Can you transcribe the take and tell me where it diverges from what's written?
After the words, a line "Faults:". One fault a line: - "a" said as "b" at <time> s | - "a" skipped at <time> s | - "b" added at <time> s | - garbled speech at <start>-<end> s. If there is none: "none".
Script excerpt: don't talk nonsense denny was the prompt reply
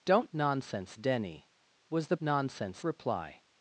don't nonsense denny was the nonsense reply
Faults:
- "talk" skipped at 0.3 s
- "prompt" said as "nonsense" at 2.2 s